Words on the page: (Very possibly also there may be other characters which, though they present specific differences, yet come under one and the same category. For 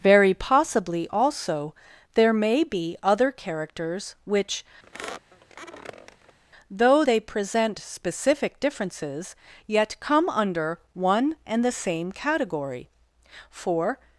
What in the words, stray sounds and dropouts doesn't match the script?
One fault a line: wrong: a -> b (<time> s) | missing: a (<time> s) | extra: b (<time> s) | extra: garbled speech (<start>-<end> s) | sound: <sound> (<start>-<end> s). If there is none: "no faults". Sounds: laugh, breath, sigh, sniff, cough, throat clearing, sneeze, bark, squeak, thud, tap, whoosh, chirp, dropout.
sound: squeak (4.8-6.4 s)